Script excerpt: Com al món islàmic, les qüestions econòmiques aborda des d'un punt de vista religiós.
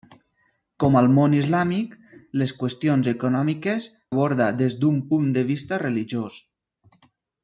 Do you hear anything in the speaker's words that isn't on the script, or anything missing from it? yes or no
no